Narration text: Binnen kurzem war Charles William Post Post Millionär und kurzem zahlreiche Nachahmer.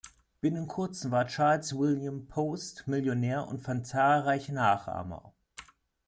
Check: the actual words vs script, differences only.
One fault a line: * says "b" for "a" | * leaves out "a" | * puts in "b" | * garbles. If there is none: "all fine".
* leaves out "Post"
* says "fand" for "kurzem"